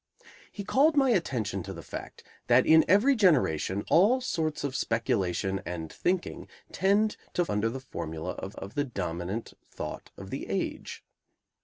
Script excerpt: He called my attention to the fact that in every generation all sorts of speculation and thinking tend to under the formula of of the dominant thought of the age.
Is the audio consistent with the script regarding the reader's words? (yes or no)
yes